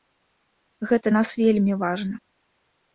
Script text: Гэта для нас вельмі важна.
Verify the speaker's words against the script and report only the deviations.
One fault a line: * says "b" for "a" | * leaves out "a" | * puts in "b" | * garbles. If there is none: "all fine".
* leaves out "для"